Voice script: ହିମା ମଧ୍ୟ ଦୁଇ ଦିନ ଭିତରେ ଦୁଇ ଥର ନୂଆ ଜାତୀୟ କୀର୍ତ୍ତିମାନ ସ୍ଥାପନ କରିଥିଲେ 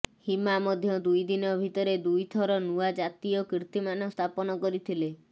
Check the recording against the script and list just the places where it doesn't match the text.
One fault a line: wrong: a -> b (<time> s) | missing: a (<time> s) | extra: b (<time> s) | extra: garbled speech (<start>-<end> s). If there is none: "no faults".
no faults